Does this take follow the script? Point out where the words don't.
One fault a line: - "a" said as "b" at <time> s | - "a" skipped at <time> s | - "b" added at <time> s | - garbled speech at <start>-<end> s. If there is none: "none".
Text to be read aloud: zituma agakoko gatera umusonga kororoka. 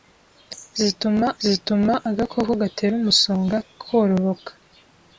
- "zituma" added at 1.4 s